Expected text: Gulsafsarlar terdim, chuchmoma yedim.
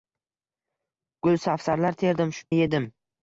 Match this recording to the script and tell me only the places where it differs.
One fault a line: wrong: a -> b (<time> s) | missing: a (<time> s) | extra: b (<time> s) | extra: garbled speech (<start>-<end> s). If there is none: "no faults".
missing: chuchmoma (2.3 s)